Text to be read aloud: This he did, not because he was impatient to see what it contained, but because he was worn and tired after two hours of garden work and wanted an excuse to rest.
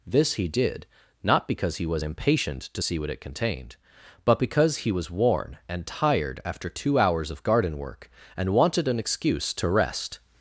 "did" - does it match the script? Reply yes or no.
yes